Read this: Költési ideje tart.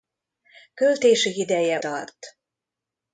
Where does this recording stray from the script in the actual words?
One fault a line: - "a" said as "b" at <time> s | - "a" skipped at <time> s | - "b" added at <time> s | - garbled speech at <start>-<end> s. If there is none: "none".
none